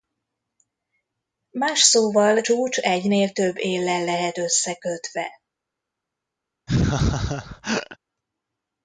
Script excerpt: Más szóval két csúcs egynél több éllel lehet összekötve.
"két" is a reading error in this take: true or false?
true